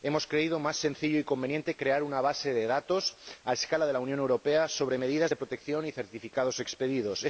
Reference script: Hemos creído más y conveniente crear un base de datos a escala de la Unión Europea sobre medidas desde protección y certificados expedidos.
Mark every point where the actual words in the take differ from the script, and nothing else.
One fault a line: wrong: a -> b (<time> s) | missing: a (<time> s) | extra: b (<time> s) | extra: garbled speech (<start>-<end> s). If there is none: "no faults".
extra: sencillo (0.8 s)
wrong: un -> una (2.0 s)
wrong: desde -> de (5.3 s)